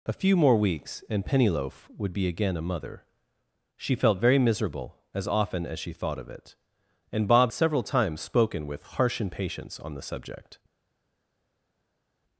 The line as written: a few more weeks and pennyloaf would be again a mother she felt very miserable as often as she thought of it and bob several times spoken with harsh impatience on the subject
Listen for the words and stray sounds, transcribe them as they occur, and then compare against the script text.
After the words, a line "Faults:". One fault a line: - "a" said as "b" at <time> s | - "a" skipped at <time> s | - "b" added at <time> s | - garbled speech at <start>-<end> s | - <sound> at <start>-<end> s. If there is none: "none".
a few more weeks and pennyloaf would be again a mother she felt very miserable as often as she thought of it and bob several times spoken with harsh impatience on the subject
Faults:
none